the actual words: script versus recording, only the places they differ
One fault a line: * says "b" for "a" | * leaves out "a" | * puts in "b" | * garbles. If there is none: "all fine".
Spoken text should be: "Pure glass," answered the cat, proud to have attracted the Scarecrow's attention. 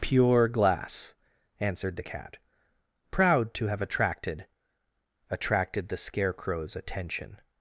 * puts in "attracted"